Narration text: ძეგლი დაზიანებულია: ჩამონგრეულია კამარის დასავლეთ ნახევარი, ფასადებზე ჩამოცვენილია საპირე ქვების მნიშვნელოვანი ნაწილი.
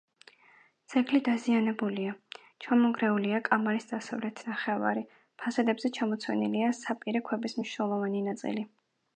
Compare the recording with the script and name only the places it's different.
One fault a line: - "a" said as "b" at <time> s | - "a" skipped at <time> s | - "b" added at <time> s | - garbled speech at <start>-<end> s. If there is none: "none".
none